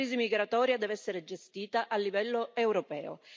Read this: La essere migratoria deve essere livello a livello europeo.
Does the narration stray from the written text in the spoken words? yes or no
yes